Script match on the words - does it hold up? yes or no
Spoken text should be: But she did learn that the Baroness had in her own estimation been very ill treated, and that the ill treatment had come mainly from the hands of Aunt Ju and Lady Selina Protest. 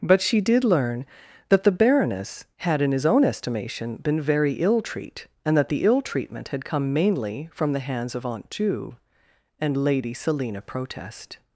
no